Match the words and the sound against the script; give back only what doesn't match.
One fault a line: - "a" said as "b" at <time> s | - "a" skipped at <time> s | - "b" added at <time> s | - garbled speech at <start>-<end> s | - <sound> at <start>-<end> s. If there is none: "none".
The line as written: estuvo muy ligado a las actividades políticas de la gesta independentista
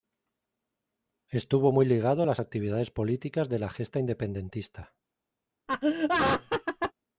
- laugh at 5.7-6.9 s